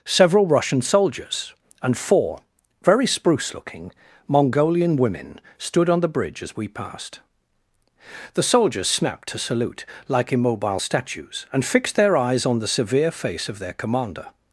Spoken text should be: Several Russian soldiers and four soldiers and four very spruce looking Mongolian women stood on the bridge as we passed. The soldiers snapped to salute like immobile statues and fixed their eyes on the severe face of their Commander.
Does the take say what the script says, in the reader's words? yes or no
no